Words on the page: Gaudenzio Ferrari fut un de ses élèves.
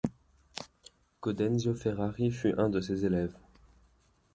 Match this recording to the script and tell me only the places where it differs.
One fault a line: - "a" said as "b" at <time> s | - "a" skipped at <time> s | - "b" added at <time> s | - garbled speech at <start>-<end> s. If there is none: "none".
none